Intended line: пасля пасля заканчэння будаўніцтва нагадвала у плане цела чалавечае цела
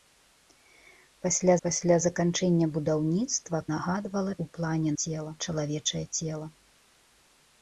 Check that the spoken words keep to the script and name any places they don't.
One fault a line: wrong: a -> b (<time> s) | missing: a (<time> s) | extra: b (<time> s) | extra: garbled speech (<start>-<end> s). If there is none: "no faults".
no faults